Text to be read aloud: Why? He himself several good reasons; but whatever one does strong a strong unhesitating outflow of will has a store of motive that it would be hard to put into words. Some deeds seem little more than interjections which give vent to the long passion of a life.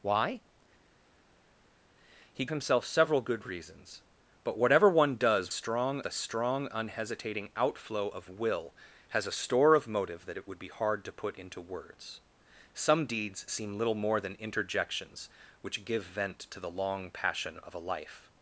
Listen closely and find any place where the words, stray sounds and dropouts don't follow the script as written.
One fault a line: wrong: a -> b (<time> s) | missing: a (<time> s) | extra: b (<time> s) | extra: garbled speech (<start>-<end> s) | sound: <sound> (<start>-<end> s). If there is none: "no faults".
no faults